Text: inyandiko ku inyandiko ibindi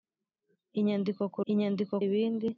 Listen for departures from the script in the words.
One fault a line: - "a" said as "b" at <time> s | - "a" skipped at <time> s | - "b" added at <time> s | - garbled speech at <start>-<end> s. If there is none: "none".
none